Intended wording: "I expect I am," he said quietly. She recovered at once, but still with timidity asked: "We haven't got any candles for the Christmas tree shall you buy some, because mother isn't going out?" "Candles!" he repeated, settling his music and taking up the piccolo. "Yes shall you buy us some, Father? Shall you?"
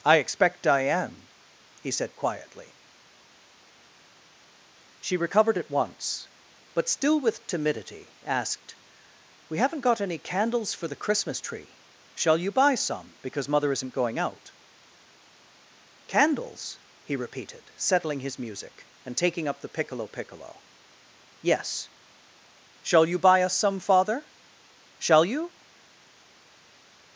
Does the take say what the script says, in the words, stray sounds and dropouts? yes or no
no